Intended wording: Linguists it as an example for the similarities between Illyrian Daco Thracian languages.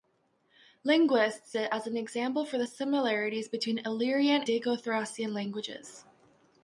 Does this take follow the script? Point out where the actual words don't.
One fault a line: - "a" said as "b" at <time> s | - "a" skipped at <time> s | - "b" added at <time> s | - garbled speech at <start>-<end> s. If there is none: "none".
none